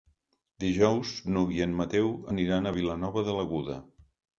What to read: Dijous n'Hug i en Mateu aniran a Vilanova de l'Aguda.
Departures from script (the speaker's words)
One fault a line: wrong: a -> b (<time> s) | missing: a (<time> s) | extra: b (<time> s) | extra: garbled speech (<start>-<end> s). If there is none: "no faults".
no faults